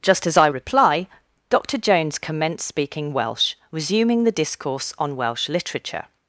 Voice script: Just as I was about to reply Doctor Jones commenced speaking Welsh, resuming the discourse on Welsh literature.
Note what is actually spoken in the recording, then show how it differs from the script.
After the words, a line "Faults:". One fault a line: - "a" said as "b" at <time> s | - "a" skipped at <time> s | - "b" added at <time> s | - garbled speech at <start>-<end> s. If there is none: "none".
Just as I reply Doctor Jones commenced speaking Welsh, resuming the discourse on Welsh literature.
Faults:
- "was about to" skipped at 0.5 s